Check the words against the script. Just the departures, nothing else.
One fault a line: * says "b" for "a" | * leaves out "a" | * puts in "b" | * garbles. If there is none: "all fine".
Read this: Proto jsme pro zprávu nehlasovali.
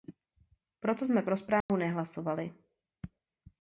all fine